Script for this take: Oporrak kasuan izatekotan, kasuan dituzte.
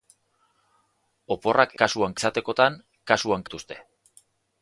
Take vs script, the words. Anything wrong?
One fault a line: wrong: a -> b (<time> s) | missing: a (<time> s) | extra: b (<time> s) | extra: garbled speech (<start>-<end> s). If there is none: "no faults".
no faults